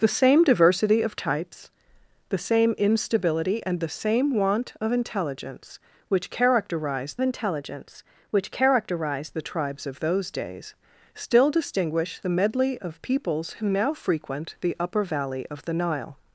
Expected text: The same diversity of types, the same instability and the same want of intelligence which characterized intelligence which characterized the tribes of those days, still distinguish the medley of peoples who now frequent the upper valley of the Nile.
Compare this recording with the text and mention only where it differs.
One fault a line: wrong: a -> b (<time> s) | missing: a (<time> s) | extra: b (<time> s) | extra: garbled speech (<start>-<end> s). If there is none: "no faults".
no faults